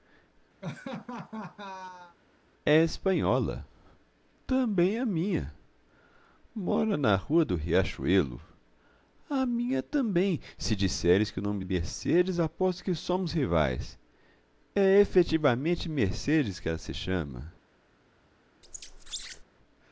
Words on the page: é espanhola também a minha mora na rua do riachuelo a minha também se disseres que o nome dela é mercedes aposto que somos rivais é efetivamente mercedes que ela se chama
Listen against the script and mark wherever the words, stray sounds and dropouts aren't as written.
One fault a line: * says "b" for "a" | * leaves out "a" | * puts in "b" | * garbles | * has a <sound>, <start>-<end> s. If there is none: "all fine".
* has a laugh, 0.6-2.2 s
* leaves out "dela"
* has a squeak, 18.6-19.4 s